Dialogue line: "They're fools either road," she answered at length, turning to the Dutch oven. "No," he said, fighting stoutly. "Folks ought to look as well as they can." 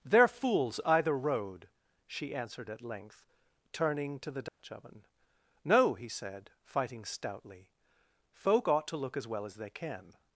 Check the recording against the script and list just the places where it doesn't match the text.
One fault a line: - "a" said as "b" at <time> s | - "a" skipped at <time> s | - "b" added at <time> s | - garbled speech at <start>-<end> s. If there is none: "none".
- "Folks" said as "Folk" at 8.3 s